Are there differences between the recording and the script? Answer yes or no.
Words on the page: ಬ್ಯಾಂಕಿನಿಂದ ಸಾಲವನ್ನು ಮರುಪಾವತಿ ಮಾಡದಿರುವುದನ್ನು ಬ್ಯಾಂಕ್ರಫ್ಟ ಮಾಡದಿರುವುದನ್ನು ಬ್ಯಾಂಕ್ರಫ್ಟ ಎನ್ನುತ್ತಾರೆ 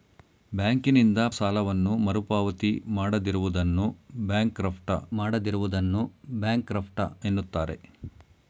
no